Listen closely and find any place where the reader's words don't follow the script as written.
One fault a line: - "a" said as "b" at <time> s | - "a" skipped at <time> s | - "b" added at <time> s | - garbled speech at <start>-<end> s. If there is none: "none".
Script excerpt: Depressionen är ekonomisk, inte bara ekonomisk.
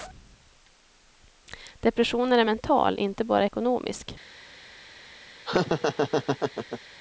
- "ekonomisk" said as "mental" at 2.4 s